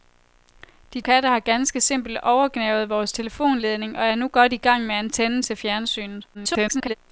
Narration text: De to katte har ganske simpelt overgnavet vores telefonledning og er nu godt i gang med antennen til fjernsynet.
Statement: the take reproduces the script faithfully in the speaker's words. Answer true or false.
false